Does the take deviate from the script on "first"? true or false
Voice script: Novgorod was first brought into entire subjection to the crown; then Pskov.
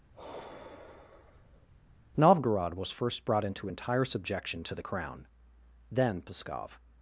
false